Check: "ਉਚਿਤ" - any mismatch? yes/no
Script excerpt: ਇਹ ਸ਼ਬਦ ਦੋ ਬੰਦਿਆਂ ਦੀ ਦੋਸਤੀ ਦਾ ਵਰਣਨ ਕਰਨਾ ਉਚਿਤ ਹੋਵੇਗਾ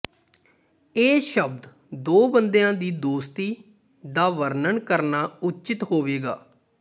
no